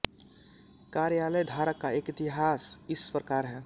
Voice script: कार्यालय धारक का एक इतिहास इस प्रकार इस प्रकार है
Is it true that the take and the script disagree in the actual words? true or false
true